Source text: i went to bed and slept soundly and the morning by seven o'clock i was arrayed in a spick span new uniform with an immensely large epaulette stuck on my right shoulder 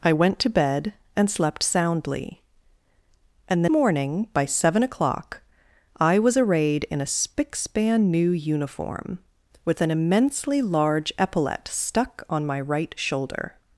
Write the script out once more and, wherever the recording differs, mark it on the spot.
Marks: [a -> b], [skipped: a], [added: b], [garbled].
i went to bed and slept soundly and the morning by seven o'clock i was arrayed in a spick span new uniform with an immensely large epaulette stuck on my right shoulder